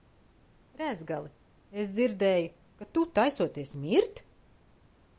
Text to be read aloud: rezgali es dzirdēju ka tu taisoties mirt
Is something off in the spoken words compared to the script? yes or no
no